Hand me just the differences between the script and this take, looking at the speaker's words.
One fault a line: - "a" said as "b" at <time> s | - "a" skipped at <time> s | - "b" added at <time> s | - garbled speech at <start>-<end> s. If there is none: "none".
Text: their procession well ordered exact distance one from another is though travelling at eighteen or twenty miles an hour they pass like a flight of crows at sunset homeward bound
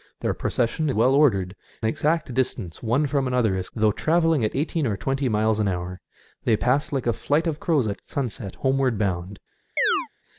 none